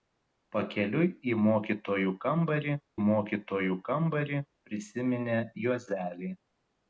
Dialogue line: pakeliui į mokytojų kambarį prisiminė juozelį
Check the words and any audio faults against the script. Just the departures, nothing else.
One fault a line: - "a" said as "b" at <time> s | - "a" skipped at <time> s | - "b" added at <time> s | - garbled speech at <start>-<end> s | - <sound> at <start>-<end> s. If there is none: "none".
- "mokytojų kambarį" added at 3.0 s